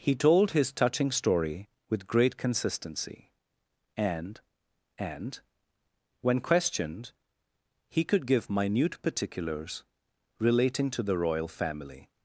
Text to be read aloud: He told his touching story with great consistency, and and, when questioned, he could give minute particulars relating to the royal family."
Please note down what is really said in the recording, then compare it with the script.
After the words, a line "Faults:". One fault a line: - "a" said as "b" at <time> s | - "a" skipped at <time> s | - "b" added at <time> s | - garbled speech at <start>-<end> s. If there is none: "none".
He told his touching story with great consistency, and and, when questioned, he could give minute particulars relating to the royal family."
Faults:
none